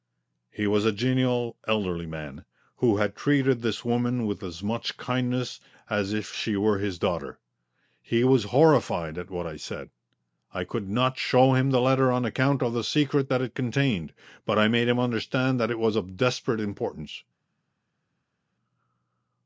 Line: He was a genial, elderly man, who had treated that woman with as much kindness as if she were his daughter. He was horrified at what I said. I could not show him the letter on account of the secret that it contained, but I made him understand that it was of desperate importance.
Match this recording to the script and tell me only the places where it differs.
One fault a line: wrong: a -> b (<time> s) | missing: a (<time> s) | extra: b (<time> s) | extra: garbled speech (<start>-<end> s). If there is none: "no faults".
wrong: that -> this (3.6 s)